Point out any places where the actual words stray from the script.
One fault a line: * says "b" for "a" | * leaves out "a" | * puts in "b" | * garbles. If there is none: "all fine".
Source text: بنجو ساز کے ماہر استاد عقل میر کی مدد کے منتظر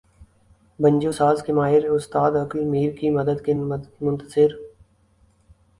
all fine